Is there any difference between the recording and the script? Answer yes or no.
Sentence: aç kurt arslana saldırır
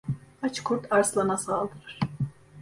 no